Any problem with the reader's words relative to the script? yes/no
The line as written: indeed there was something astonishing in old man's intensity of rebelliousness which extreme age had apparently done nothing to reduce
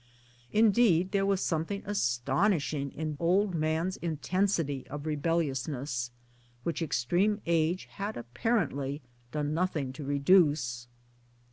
no